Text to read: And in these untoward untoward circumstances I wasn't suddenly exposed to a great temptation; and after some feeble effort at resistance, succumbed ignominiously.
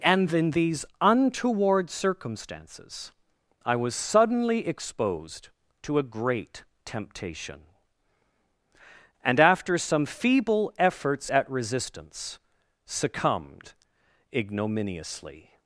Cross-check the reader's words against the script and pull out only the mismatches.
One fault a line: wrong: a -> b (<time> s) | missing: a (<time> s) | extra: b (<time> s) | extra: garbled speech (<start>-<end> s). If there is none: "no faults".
missing: untoward (1.9 s)
wrong: wasn't -> was (3.7 s)
wrong: effort -> efforts (10.8 s)